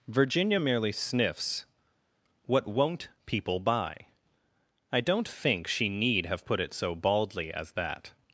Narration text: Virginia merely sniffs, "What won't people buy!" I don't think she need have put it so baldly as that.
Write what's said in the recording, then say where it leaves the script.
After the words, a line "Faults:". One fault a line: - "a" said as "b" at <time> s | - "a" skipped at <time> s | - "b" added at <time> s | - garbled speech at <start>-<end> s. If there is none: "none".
Virginia merely sniffs, "What won't people buy!" I don't think she need have put it so baldly as that.
Faults:
none